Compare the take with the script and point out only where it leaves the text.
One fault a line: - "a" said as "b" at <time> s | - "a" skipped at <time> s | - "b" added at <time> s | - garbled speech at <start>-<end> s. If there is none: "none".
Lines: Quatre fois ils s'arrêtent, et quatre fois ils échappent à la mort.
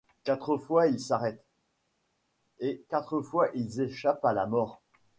none